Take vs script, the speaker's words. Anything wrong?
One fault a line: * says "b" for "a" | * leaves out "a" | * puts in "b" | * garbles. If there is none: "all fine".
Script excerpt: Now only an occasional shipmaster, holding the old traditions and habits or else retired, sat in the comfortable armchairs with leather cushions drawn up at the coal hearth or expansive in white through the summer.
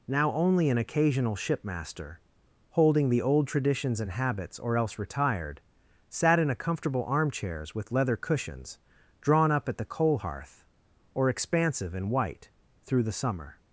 * says "a" for "the"